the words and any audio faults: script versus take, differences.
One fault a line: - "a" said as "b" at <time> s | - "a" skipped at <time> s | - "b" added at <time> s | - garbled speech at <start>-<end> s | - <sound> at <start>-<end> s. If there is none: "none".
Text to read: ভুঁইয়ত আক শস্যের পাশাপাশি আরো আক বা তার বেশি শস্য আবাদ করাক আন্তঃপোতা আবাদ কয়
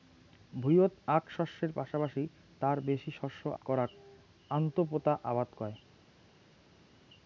- "আরো আক বা" skipped at 2.2 s
- "আবাদ" skipped at 3.4 s